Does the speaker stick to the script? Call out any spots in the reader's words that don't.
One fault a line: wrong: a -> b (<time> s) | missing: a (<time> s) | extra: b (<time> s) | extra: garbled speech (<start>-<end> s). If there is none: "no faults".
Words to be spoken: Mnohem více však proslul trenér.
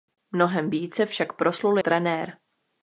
no faults